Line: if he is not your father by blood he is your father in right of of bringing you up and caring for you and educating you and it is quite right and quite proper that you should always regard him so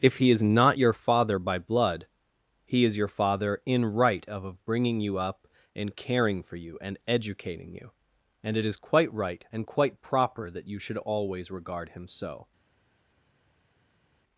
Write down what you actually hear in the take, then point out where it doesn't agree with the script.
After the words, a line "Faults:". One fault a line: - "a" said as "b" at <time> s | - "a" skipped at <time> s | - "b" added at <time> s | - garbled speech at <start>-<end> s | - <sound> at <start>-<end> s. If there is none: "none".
if he is not your father by blood he is your father in right of of bringing you up and caring for you and educating you and it is quite right and quite proper that you should always regard him so
Faults:
none